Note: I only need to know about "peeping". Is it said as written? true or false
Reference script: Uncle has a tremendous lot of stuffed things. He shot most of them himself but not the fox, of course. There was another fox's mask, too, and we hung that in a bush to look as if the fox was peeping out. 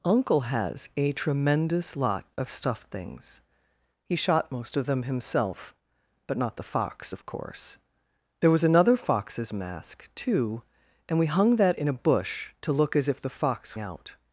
false